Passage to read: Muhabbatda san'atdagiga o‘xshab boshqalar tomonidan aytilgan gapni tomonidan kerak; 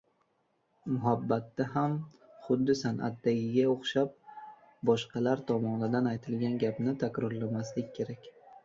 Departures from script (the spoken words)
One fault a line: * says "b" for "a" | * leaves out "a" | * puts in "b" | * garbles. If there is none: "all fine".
* puts in "ham xuddi"
* says "takrorlamaslik" for "tomonidan"